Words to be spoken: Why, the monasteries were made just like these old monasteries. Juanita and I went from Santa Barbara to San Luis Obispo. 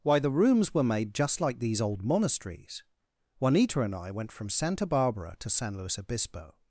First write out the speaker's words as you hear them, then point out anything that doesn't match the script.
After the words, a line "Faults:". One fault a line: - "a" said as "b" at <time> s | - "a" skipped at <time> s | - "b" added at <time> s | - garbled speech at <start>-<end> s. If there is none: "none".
Why, the rooms were made just like these old monasteries. Juanita and I went from Santa Barbara to San Luis Obispo.
Faults:
- "monasteries" said as "rooms" at 0.3 s